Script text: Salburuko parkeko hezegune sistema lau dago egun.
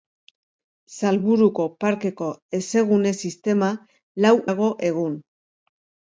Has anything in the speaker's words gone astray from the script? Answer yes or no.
no